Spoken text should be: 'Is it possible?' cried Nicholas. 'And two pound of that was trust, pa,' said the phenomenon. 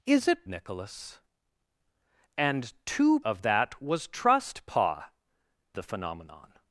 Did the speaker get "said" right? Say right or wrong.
wrong